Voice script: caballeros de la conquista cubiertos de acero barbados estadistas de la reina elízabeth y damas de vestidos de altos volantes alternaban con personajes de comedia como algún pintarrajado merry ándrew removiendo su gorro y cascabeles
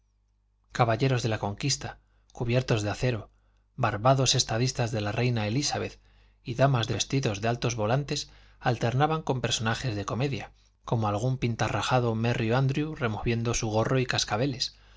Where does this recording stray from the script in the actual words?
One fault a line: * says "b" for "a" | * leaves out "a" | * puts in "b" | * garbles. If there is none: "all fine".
all fine